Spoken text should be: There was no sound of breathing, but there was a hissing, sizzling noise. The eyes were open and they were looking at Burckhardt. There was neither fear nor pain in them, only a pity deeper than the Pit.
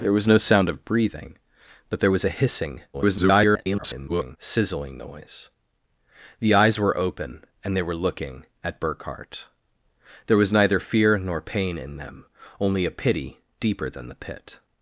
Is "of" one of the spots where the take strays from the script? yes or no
no